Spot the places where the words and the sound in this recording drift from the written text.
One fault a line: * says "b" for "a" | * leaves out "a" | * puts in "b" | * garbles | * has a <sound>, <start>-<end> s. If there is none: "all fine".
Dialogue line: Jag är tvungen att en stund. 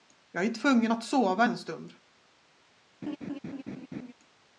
* puts in "sova"
* has a laugh, 3.0-4.1 s